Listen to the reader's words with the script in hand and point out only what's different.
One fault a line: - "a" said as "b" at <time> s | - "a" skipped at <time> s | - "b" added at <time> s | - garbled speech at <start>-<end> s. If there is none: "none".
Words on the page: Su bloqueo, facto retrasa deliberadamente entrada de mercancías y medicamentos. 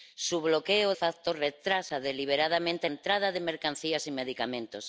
none